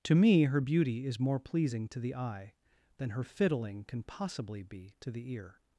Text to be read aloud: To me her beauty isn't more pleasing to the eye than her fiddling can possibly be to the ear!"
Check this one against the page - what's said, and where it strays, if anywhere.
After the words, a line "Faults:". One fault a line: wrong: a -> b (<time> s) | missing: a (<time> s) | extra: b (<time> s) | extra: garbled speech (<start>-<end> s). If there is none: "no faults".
To me her beauty is more pleasing to the eye than her fiddling can possibly be to the ear!"
Faults:
wrong: isn't -> is (1.1 s)